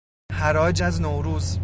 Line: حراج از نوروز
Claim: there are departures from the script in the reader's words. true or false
false